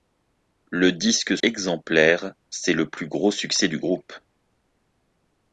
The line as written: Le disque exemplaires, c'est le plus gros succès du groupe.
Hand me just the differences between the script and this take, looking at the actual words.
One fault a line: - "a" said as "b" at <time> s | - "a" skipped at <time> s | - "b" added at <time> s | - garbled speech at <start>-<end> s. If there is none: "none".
none